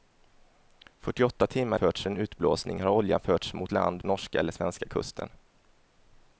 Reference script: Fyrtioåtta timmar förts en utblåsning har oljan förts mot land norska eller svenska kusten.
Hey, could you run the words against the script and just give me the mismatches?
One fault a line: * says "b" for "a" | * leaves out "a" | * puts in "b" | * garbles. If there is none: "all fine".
all fine